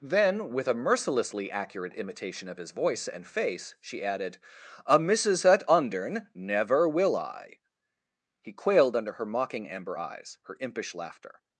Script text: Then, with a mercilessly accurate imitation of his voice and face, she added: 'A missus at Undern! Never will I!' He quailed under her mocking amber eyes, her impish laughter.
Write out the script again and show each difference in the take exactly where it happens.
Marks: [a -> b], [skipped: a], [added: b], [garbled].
Then, with a mercilessly accurate imitation of his voice and face, she added: 'A missus at Undern! Never will I!' He quailed under her mocking amber eyes, her impish laughter.